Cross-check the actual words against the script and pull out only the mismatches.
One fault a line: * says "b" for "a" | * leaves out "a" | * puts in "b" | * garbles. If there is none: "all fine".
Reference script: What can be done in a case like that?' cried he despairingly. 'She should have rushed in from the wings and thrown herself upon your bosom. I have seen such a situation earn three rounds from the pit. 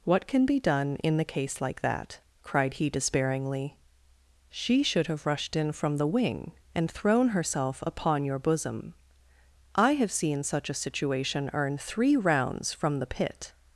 * says "the" for "a"
* says "wing" for "wings"